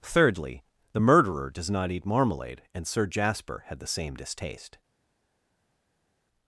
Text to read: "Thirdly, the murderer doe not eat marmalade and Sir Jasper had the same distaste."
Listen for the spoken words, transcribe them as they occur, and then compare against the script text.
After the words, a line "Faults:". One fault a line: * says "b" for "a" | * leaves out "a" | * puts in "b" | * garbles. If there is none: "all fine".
"Thirdly, the murderer does not eat marmalade and Sir Jasper had the same distaste."
Faults:
* says "does" for "doe"